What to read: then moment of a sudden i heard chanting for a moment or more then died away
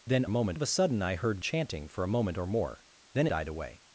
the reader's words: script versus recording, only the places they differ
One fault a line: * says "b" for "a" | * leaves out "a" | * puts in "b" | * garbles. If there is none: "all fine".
all fine